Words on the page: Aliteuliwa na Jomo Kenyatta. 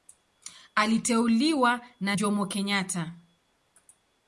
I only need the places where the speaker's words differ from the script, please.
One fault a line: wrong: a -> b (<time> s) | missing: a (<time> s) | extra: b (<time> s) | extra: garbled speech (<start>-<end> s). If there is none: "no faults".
no faults